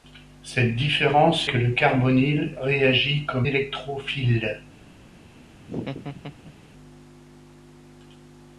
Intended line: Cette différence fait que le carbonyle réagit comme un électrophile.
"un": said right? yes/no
no